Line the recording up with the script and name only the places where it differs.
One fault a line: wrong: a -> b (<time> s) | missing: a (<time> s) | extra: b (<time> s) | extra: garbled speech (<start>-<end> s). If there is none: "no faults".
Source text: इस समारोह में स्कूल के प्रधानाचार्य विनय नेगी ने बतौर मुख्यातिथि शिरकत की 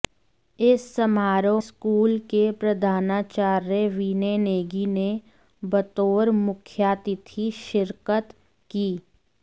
missing: में (1.6 s)